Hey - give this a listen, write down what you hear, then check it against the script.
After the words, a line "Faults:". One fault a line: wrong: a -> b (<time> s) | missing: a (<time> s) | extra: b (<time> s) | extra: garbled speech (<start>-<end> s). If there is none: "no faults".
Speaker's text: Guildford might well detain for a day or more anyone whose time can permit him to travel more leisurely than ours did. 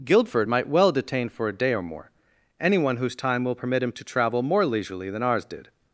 Guildford might well detain for a day or more anyone whose time will permit him to travel more leisurely than ours did.
Faults:
wrong: can -> will (3.4 s)